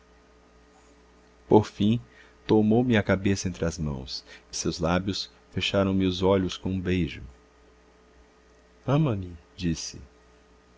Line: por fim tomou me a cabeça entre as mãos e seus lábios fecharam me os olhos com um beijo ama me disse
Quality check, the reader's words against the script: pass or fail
pass